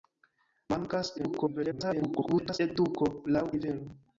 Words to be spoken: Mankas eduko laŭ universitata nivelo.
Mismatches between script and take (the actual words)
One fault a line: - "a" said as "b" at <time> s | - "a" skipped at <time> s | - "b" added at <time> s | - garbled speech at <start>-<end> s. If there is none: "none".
- garbled speech at 1.2-2.6 s
- "universitata" skipped at 3.4 s